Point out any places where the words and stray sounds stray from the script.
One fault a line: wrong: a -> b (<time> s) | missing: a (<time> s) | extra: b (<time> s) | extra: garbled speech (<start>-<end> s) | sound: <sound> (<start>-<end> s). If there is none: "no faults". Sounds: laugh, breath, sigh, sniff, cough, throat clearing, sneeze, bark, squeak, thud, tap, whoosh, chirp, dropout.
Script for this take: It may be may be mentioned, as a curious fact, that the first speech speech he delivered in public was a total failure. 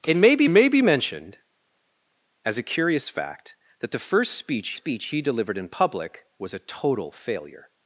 no faults